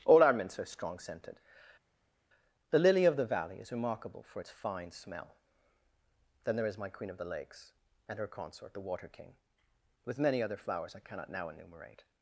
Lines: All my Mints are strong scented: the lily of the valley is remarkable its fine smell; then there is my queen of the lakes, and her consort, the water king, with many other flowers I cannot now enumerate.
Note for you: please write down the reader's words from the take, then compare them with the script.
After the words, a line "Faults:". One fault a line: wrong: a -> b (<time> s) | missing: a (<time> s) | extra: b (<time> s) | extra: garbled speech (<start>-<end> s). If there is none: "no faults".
All our Mints are strong scented: the lily of the valley is remarkable for its fine smell; then there is my queen of the lakes, and her consort, the water king, with many other flowers I cannot now enumerate.
Faults:
wrong: my -> our (0.2 s)
extra: for (4.2 s)